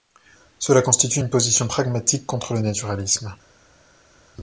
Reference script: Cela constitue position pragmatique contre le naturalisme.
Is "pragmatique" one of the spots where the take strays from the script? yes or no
no